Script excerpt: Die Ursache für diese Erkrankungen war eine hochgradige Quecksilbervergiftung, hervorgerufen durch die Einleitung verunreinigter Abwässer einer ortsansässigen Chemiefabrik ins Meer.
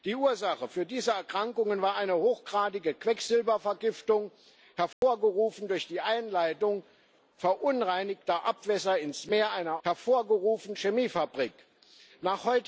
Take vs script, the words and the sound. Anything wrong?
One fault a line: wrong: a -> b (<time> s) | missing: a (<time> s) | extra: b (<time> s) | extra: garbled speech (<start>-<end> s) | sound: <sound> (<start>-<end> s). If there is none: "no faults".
sound: dropout (4.9-5.0 s)
wrong: ortsansässigen -> hervorgerufen (9.8 s)